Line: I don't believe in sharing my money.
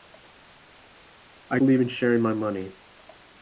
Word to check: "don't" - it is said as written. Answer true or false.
false